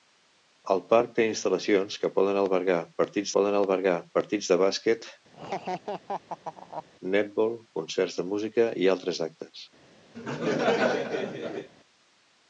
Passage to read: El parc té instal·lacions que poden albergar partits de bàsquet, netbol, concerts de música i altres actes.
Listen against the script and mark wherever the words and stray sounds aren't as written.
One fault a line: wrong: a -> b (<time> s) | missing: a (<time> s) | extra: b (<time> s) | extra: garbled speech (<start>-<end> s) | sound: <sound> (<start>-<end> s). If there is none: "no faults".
extra: poden albergar partits (3.3 s)
sound: laugh (5.3-6.9 s)
sound: laugh (10.1-11.7 s)